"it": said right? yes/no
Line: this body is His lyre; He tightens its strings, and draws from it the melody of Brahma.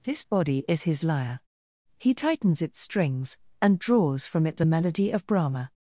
yes